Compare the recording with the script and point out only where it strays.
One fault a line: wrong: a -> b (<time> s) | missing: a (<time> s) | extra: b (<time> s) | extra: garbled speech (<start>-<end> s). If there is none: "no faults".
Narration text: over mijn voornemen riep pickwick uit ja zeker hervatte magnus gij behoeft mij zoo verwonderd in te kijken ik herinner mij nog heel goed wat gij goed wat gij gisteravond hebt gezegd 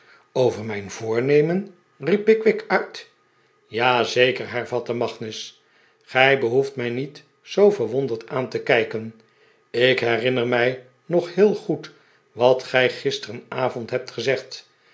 extra: niet (6.9 s)
wrong: in -> aan (8.3 s)
missing: goed wat gij (12.9 s)